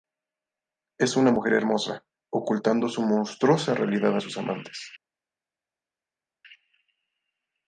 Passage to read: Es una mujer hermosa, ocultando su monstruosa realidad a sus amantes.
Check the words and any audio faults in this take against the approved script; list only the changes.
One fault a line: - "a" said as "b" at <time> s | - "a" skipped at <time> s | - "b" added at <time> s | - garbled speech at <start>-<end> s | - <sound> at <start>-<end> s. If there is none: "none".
none